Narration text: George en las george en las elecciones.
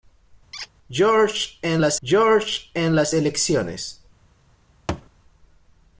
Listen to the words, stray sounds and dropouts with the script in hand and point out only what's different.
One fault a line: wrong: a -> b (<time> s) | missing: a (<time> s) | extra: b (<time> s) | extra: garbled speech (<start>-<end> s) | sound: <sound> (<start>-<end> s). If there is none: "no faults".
sound: squeak (0.5-0.7 s)
sound: thud (4.9-5.1 s)